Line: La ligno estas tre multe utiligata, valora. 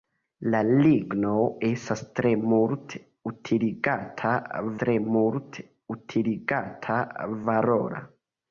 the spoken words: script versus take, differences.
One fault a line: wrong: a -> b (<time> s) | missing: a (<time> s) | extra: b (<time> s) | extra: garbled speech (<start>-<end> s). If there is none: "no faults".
extra: tre multe utiligata (4.8 s)